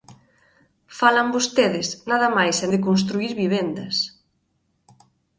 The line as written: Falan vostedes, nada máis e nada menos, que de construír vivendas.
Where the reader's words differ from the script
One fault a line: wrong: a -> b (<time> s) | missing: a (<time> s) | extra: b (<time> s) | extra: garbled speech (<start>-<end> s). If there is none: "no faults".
missing: nada menos que (2.7 s)